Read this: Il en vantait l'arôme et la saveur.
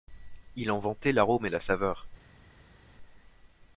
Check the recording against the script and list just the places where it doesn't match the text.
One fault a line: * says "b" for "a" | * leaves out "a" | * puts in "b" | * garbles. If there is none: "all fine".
all fine